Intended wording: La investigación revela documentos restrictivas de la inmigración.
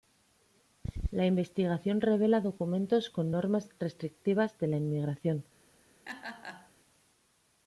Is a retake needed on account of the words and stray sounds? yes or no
yes